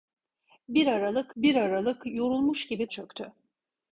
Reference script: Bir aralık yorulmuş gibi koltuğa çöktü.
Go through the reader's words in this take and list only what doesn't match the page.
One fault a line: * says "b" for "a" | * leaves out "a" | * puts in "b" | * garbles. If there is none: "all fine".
* puts in "bir aralık"
* leaves out "koltuğa"